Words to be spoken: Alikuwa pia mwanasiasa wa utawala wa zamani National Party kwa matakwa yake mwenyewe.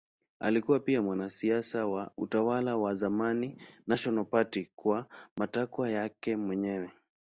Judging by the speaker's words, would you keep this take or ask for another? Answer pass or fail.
pass